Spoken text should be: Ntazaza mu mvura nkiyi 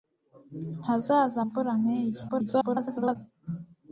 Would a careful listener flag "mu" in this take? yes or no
yes